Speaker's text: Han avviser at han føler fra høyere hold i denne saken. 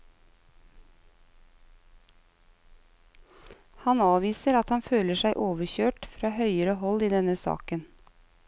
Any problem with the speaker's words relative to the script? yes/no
yes